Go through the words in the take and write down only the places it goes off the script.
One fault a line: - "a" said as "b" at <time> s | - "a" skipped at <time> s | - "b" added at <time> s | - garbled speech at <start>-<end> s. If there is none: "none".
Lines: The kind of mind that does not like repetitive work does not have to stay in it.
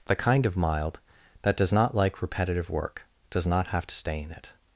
- "mind" said as "mild" at 0.6 s